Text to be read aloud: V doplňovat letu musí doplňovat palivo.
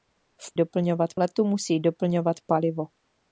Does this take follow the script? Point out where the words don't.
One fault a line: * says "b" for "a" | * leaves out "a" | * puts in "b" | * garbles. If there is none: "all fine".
all fine